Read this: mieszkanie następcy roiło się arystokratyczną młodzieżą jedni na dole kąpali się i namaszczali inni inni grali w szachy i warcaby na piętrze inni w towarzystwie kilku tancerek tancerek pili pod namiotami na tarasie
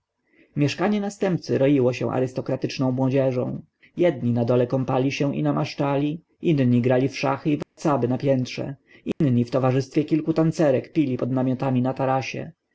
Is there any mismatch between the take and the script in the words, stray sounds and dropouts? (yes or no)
yes